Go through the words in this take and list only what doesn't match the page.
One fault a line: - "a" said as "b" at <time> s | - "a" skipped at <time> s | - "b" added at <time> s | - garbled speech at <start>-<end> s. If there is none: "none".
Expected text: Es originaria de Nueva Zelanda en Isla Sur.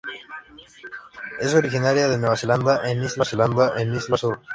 - "Zelanda en Isla" added at 3.2 s